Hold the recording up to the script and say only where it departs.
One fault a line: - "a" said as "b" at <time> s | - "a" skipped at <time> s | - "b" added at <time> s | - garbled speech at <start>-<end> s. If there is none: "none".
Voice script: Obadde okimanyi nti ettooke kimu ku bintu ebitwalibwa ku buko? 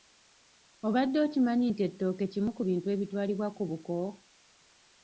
none